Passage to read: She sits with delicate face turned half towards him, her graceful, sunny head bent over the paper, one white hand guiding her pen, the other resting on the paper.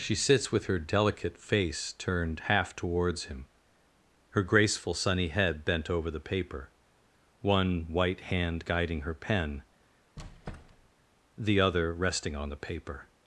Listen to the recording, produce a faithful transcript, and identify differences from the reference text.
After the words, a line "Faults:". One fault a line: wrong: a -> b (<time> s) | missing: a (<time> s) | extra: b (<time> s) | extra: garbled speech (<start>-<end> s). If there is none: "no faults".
She sits with her delicate face turned half towards him, her graceful, sunny head bent over the paper, one white hand guiding her pen, the other resting on the paper.
Faults:
extra: her (0.7 s)